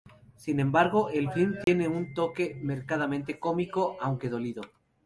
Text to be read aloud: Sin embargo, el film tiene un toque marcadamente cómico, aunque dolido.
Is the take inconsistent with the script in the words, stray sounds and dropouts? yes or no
yes